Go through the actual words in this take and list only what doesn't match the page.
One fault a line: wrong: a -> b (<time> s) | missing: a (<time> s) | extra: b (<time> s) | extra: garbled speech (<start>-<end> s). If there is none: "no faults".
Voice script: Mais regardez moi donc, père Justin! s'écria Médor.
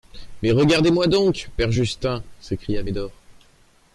no faults